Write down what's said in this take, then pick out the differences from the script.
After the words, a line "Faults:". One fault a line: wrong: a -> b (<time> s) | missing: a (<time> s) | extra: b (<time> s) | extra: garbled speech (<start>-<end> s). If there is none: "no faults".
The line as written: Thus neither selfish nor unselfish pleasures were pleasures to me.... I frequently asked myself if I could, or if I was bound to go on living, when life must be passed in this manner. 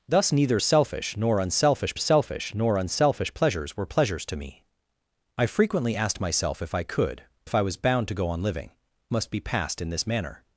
Thus neither selfish nor unselfish selfish nor unselfish pleasures were pleasures to me.... I frequently asked myself if I could, if I was bound to go on living, must be passed in this manner.
Faults:
extra: selfish nor unselfish (1.9 s)
missing: or (7.2 s)
missing: when life (8.7 s)